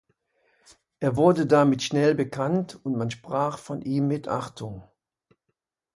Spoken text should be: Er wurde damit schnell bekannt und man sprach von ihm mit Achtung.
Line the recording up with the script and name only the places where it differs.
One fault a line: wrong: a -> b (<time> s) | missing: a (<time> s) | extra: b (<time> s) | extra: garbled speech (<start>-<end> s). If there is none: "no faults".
no faults